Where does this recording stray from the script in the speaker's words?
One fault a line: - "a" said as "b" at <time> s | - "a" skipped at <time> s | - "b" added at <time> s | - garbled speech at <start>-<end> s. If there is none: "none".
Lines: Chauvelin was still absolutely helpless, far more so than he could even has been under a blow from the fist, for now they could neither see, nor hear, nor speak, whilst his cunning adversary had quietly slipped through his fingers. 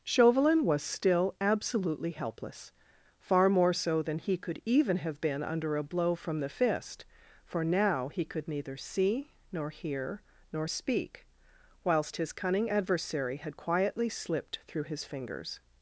- "has" said as "have" at 5.0 s
- "they" said as "he" at 8.1 s